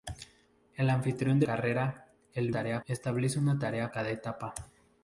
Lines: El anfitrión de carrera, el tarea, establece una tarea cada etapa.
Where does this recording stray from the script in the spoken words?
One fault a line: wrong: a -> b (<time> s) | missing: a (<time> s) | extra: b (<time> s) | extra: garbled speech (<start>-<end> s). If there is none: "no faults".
no faults